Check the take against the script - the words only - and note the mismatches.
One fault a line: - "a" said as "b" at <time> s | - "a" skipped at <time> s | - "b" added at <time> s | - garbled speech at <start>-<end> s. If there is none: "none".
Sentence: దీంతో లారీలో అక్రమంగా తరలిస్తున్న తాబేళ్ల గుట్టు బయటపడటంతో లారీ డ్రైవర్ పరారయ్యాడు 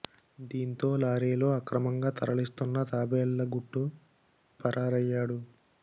- "బయటపడటంతో లారీ డ్రైవర్" skipped at 3.8 s